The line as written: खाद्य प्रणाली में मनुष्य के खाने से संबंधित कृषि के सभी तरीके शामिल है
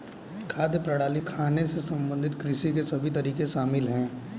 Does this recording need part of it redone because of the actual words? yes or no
yes